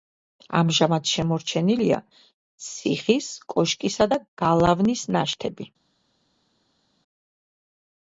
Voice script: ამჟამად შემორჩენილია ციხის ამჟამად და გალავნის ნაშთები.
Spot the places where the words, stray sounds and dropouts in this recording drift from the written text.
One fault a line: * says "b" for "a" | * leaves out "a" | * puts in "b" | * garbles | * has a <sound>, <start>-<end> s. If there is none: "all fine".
* says "კოშკისა" for "ამჟამად"